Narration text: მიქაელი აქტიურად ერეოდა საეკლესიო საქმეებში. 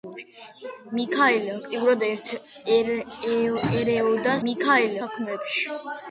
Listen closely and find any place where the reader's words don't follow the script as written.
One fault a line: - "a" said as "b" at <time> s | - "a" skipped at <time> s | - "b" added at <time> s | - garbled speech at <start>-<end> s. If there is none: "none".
- "საეკლესიო" said as "მიქაელი" at 4.5 s